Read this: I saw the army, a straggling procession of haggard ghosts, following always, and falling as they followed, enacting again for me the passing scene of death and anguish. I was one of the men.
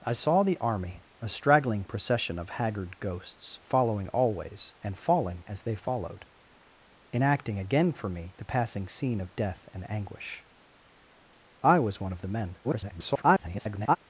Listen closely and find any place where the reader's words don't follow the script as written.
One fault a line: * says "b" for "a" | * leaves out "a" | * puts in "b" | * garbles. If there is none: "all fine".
* garbles